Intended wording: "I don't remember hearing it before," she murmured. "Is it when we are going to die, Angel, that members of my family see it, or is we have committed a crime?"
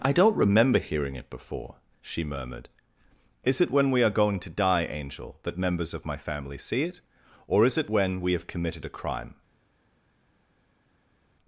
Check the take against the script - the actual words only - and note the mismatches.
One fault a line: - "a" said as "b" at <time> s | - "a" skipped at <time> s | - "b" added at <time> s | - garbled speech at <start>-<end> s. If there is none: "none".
- "it when" added at 7.8 s